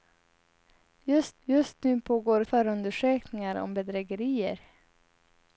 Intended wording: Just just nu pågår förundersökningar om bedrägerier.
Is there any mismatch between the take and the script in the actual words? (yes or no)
no